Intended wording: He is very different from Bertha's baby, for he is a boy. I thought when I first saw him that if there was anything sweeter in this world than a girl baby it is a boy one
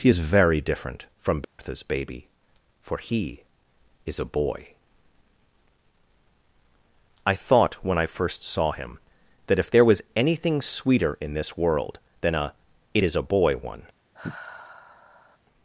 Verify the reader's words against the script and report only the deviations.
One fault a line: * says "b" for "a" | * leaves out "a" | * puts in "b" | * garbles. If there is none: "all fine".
* leaves out "girl baby"